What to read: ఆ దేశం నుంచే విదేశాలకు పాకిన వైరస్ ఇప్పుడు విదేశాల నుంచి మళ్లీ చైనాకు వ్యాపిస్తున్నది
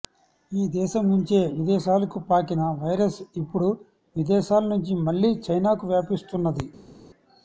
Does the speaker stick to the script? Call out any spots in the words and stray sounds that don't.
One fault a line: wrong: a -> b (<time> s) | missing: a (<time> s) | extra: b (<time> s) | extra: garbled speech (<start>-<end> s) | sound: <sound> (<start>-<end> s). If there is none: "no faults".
wrong: ఆ -> ఈ (0.5 s)